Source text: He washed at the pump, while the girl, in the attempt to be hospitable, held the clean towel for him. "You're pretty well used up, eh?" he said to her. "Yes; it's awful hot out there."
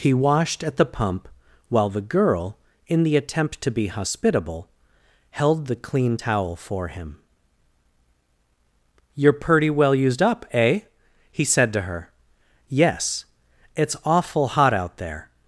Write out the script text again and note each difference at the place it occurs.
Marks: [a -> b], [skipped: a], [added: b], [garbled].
He washed at the pump, while the girl, in the attempt to be hospitable, held the clean towel for him. "You're pretty well used up, eh?" he said to her. "Yes; it's awful hot out there."